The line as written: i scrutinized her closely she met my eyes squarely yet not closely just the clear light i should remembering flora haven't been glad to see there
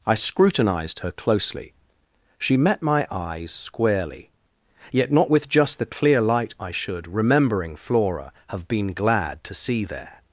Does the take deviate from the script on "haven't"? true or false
true